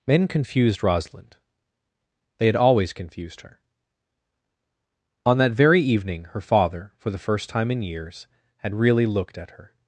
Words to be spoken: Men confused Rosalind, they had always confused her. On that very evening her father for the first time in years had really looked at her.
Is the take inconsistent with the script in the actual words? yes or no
no